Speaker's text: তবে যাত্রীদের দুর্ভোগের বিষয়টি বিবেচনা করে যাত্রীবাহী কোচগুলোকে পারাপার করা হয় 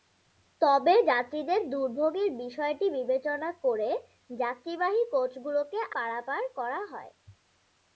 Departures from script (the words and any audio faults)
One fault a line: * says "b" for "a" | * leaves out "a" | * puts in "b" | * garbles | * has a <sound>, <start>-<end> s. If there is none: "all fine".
all fine